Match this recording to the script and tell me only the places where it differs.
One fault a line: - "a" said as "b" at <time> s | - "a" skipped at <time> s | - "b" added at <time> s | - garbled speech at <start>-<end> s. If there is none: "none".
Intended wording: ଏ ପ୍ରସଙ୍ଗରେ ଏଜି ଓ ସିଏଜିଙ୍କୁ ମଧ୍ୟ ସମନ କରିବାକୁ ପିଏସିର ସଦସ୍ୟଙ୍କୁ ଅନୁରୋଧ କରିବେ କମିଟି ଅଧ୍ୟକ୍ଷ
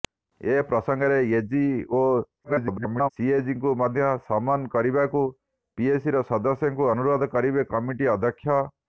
- garbled speech at 2.4-3.1 s